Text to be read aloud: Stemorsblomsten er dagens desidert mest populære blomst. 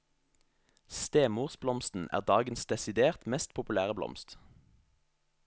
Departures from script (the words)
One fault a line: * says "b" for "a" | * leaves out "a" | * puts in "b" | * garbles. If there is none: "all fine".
all fine